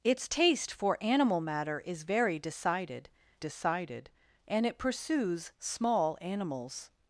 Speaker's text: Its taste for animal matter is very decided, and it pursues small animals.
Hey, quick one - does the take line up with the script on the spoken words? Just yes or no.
no